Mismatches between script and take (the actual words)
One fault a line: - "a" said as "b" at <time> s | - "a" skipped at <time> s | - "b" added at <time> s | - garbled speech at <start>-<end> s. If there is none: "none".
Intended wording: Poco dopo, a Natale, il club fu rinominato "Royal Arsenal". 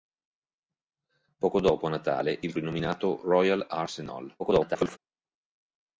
- "club fu" skipped at 2.5 s
- garbled speech at 4.4-5.0 s